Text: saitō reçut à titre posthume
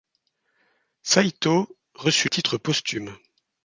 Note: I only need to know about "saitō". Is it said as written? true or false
true